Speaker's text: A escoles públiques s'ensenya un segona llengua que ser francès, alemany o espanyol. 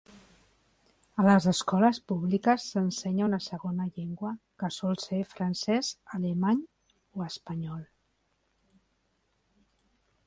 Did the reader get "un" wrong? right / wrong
wrong